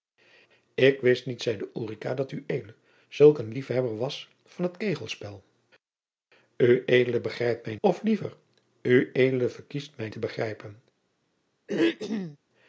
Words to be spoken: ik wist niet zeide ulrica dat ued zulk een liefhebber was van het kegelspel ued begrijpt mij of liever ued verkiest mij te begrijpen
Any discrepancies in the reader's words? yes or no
no